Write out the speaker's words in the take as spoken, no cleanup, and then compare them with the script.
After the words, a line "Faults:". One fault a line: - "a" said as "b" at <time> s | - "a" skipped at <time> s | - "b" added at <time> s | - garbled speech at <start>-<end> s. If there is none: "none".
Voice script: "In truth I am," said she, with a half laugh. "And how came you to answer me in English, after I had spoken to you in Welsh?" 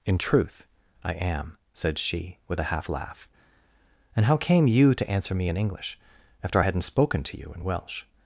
"In truth I am," said she, with a half laugh. "And how came you to answer me in English, after I hadn't spoken to you in Welsh?"
Faults:
- "had" said as "hadn't" at 6.6 s